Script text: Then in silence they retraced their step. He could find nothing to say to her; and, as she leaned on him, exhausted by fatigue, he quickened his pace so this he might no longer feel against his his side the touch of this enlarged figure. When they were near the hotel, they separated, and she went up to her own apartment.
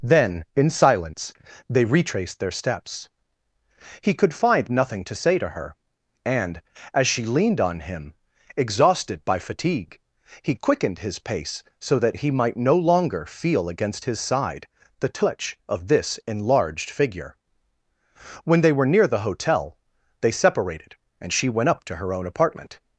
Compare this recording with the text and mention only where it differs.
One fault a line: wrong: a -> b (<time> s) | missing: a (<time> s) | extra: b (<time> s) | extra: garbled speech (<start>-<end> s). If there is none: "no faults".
wrong: step -> steps (2.5 s)
wrong: this -> that (12.0 s)
missing: his (14.2 s)